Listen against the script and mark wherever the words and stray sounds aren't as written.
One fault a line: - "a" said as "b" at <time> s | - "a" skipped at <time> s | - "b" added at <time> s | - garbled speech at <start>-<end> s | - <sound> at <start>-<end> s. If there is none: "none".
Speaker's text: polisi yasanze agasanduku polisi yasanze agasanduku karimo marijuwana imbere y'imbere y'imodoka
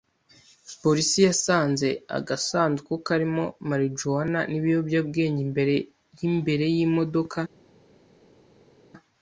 - "polisi yasanze agasanduku" skipped at 2.9 s
- "n'ibiyobyabwenge" added at 4.5 s